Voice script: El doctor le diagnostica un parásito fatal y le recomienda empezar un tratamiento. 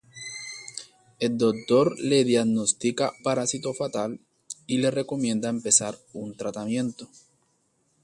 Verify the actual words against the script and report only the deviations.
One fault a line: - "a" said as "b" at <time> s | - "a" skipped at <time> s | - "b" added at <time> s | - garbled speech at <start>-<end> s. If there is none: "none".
- "un" skipped at 3.1 s